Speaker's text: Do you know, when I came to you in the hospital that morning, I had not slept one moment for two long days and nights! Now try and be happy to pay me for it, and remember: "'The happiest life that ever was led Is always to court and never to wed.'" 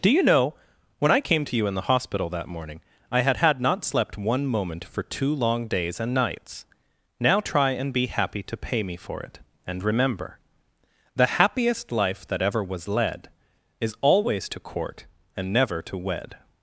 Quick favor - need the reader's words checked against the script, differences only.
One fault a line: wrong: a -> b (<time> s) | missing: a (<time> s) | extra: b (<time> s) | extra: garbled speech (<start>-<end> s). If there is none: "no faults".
extra: had (3.4 s)